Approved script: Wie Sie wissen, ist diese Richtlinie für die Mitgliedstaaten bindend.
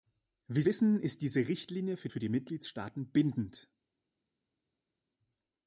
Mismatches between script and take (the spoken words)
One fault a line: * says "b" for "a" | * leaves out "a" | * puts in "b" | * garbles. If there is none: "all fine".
* leaves out "Sie"
* puts in "für"